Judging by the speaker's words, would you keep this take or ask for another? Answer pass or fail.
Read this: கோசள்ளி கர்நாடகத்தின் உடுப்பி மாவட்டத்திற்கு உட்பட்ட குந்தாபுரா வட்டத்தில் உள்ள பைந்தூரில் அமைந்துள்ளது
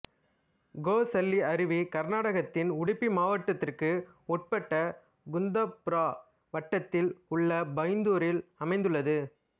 fail